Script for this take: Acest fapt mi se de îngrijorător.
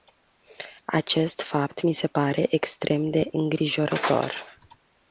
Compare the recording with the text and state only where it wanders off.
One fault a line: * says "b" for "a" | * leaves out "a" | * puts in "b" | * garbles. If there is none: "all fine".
* puts in "pare extrem"